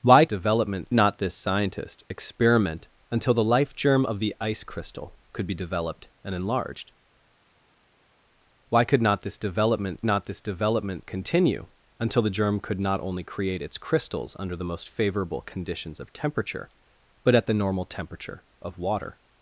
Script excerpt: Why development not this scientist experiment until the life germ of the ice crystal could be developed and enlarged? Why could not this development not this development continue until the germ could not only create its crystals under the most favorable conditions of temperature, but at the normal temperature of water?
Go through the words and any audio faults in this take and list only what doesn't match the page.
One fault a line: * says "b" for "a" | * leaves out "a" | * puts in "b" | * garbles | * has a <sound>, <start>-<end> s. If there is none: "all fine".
all fine